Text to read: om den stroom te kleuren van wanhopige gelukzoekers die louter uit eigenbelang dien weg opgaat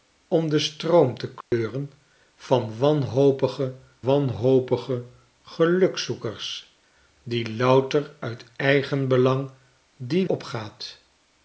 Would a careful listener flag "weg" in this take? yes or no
yes